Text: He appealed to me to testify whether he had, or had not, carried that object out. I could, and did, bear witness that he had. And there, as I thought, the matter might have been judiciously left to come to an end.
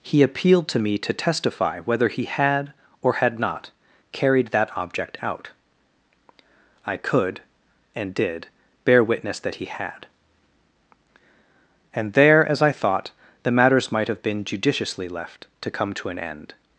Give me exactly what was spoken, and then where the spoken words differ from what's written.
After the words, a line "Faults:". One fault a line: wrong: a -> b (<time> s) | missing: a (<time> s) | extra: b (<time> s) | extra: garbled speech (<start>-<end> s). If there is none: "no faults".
He appealed to me to testify whether he had, or had not, carried that object out. I could, and did, bear witness that he had. And there, as I thought, the matters might have been judiciously left to come to an end.
Faults:
wrong: matter -> matters (13.5 s)